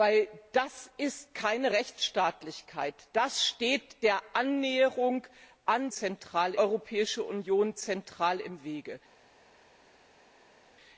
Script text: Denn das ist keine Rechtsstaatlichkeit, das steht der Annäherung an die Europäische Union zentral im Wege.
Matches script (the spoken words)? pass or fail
fail